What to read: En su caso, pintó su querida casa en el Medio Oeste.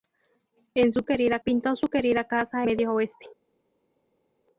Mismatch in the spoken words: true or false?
true